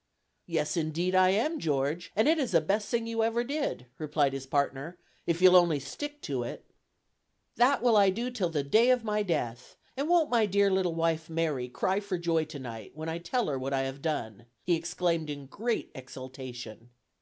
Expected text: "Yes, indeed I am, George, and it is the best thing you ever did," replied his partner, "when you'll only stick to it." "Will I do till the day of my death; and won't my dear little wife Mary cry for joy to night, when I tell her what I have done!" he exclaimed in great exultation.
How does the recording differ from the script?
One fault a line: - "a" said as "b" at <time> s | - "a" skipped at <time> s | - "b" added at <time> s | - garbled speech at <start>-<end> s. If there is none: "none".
- "when" said as "if" at 5.3 s
- "That" added at 7.6 s